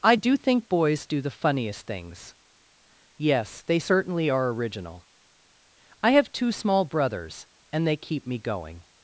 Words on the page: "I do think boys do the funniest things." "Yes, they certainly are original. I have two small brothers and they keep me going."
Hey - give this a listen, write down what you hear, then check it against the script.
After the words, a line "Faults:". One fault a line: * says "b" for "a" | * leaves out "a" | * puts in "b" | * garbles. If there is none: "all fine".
"I do think boys do the funniest things." "Yes, they certainly are original. I have two small brothers and they keep me going."
Faults:
all fine